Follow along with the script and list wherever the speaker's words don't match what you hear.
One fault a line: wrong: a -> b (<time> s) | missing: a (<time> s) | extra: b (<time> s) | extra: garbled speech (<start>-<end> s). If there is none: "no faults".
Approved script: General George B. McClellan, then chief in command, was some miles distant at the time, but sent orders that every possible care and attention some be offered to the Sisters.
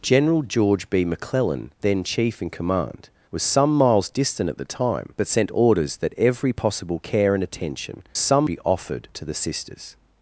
no faults